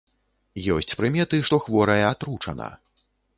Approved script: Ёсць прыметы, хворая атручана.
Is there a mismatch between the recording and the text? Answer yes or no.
yes